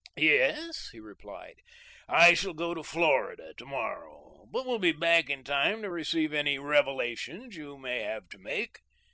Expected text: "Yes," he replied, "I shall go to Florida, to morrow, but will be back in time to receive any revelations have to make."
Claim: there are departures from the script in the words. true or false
true